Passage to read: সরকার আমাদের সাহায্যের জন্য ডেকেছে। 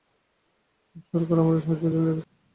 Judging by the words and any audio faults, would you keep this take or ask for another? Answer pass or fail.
pass